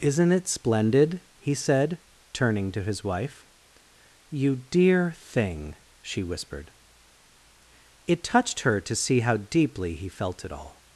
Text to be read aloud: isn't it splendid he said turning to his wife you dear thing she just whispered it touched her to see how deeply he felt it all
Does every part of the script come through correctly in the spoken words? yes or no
no